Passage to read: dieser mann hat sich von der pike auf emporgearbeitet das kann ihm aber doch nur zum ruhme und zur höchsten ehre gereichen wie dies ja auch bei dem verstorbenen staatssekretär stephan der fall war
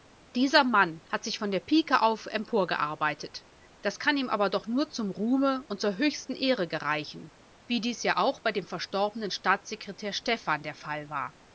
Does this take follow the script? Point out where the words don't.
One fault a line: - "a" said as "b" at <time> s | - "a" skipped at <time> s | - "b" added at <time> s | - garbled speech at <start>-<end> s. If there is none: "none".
none